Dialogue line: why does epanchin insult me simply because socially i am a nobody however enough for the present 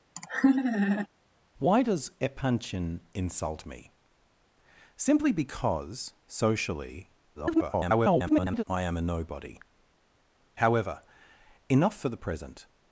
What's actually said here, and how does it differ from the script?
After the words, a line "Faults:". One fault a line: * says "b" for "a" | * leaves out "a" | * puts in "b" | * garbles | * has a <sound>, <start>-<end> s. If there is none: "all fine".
why does epanchin insult me simply because socially [garbled] i am a nobody however enough for the present
Faults:
* has a laugh, 0.2-1.1 s
* garbles